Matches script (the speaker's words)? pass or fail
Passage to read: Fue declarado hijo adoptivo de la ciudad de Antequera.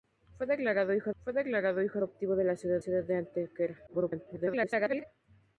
fail